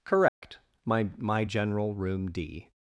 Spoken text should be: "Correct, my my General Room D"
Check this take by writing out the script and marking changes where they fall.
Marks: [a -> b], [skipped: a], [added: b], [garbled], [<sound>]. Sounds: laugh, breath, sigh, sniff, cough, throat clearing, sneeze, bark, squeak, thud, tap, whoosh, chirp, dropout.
"Correct, [dropout] my my General Room D"